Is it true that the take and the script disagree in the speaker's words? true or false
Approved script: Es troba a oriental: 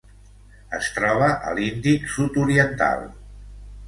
true